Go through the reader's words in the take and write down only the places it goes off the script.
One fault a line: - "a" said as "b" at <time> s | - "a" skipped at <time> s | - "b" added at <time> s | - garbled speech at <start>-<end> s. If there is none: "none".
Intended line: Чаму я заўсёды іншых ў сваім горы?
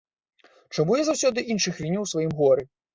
- "віню" added at 1.8 s